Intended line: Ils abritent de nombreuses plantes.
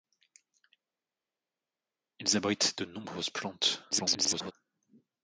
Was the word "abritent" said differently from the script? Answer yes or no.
no